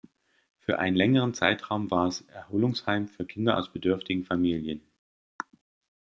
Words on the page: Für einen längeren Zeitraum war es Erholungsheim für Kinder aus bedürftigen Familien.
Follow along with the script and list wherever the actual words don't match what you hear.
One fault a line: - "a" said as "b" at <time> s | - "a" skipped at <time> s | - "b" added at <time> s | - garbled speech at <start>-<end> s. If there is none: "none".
none